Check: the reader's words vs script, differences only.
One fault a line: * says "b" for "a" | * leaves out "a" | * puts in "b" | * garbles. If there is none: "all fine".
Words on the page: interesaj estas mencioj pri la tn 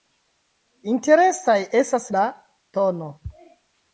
* leaves out "mencioj pri"